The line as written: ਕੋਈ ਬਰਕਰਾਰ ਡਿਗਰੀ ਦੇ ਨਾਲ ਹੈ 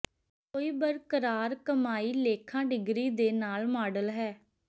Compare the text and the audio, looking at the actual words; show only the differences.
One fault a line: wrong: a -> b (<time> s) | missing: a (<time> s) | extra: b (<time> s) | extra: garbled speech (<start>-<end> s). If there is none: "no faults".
extra: ਕਮਾਈ ਲੇਖਾ (1.6 s)
extra: ਮਾਡਲ (3.7 s)